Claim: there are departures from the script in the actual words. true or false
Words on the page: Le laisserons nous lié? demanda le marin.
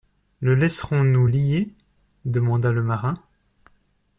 false